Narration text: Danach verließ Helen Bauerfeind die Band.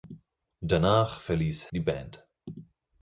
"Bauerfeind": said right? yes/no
no